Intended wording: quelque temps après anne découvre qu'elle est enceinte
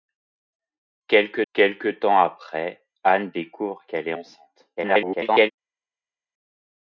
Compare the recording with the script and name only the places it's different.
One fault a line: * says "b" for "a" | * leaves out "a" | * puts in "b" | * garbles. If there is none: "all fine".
* puts in "quelque"
* garbles